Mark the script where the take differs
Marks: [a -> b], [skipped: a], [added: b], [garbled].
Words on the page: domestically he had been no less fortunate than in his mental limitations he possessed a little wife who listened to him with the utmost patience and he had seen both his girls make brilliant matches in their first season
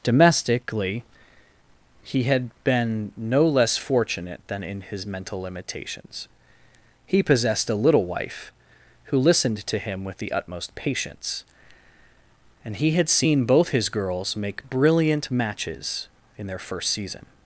domestically he had been no less fortunate than in his mental limitations he possessed a little wife who listened to him with the utmost patience and he had seen both his girls make brilliant matches in their first season